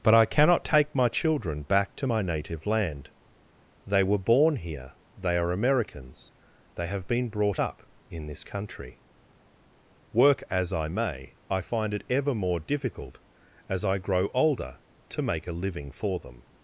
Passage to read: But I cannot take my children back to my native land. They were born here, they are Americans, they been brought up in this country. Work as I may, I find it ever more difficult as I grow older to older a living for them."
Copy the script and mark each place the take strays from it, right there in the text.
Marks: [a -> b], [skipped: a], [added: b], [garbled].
But I cannot take my children back to my native land. They were born here, they are Americans, they [added: have] been brought up in this country. Work as I may, I find it ever more difficult as I grow older to [older -> make] a living for them."